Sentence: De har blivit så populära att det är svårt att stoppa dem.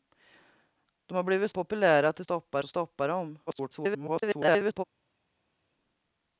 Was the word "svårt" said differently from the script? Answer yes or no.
yes